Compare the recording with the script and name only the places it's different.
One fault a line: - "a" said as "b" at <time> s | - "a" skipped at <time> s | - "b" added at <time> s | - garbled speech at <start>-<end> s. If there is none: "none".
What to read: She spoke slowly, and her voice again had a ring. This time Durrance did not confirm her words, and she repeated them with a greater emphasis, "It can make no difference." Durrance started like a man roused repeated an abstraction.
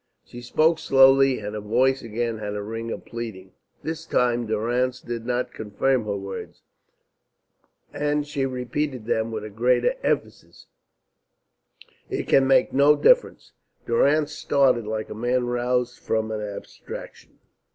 - "of pleading" added at 2.9 s
- "repeated" said as "from" at 16.0 s